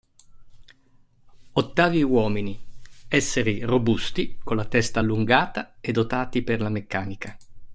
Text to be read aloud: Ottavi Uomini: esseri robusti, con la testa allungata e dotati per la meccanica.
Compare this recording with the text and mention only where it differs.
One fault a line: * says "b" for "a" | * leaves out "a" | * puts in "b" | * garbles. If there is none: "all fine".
all fine